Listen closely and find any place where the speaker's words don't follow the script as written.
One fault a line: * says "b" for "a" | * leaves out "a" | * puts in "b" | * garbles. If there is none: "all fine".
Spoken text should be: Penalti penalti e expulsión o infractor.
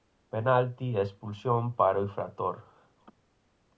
* leaves out "penalti"
* puts in "para"